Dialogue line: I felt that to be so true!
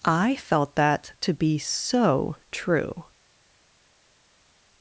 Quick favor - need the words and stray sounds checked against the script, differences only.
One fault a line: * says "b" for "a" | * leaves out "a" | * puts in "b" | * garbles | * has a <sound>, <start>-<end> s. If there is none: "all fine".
all fine